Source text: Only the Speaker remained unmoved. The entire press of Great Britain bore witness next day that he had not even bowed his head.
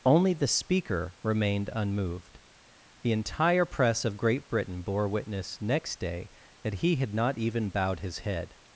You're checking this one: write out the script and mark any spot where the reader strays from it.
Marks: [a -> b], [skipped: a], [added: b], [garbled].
Only the Speaker remained unmoved. The entire press of Great Britain bore witness next day that he had not even bowed his head.